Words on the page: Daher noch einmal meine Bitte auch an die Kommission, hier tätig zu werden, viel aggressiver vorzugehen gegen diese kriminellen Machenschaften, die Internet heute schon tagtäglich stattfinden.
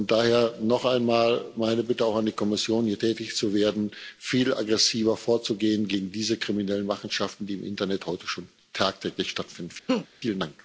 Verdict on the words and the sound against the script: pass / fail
fail